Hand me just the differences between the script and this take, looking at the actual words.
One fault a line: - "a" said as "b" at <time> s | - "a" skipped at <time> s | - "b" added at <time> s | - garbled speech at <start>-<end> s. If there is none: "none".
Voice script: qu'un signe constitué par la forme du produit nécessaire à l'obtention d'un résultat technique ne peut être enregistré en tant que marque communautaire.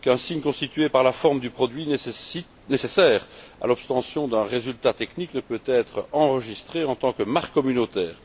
none